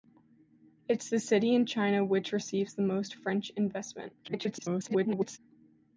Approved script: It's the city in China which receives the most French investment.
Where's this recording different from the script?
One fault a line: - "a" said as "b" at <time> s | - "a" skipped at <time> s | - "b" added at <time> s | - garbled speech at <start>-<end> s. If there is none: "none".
- garbled speech at 4.2-5.4 s